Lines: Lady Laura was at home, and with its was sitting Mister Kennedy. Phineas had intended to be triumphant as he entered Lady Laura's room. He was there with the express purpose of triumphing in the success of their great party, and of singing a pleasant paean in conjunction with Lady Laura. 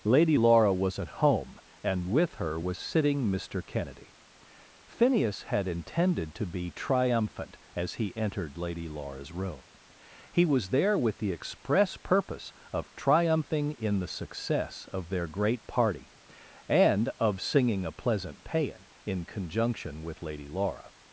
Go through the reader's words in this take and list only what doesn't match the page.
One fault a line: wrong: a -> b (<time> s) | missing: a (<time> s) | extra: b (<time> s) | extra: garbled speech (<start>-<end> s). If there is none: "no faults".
wrong: its -> her (2.3 s)